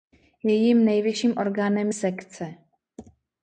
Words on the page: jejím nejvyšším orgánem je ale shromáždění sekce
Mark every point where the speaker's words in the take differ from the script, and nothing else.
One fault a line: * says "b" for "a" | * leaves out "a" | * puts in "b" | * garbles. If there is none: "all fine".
* leaves out "je ale shromáždění"